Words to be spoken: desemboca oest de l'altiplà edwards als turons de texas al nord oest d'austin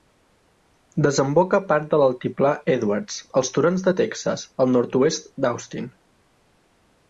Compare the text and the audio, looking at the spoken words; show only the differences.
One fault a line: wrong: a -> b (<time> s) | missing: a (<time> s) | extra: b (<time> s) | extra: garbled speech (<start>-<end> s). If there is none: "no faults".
wrong: oest -> part (1.7 s)